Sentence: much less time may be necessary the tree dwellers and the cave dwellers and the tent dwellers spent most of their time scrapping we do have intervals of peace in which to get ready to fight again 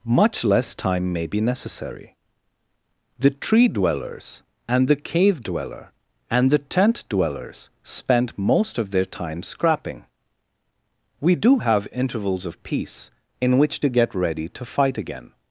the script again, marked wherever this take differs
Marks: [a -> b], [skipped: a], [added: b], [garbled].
much less time may be necessary the tree dwellers and the cave [dwellers -> dweller] and the tent dwellers spent most of their time scrapping we do have intervals of peace in which to get ready to fight again